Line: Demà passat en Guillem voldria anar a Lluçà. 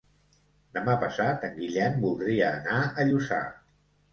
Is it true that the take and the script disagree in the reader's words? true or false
false